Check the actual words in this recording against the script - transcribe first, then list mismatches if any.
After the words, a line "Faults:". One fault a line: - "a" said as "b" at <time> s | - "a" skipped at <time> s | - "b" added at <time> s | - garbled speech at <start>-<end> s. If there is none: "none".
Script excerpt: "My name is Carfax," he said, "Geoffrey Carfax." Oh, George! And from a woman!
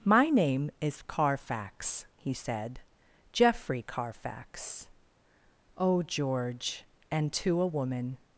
"My name is Carfax," he said, "Geoffrey Carfax." Oh, George! And to a woman!
Faults:
- "from" said as "to" at 7.3 s